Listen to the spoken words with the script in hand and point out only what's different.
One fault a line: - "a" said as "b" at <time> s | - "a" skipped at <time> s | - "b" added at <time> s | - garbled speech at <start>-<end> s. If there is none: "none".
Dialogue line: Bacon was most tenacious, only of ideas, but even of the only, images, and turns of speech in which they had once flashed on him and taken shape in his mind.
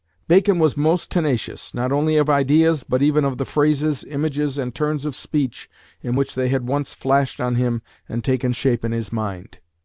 - "not" added at 1.8 s
- "only" said as "phrases" at 3.5 s